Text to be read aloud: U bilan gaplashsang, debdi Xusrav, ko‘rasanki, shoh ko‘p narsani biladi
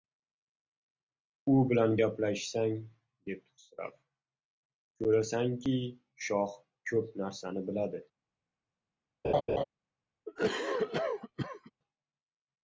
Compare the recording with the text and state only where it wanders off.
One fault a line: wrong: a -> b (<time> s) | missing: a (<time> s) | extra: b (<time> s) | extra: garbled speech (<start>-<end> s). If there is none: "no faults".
no faults